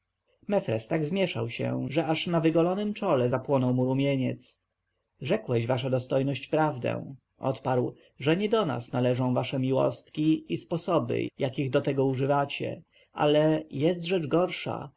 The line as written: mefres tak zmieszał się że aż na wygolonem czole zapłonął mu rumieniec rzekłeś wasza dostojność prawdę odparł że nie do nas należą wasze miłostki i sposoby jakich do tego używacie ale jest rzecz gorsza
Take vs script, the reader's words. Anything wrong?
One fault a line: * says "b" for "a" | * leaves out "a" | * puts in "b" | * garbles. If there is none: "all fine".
all fine